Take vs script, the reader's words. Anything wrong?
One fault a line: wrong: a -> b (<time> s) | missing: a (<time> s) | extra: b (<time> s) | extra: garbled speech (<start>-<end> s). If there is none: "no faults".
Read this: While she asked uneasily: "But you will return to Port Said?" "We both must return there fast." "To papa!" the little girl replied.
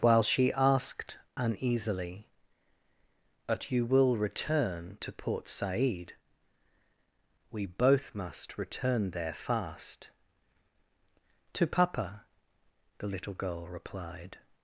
no faults